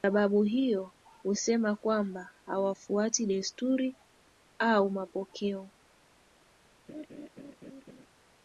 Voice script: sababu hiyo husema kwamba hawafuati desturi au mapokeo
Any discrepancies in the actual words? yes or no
no